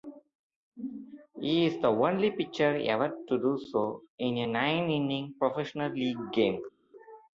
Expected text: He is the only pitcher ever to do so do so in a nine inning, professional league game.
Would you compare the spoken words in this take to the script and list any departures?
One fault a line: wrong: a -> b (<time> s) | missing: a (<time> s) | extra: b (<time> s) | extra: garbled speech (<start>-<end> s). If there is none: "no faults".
missing: do so (4.0 s)